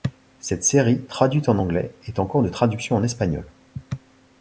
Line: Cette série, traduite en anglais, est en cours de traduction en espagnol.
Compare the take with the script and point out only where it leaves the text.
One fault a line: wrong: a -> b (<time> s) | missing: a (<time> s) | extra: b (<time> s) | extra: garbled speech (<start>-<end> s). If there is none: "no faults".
no faults